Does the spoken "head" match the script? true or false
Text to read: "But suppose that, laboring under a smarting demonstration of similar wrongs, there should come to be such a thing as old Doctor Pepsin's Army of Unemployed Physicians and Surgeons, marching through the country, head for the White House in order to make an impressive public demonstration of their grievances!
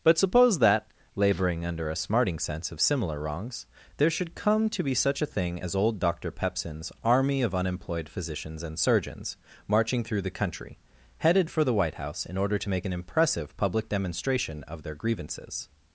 false